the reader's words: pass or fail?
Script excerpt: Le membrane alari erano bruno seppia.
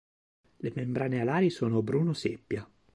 fail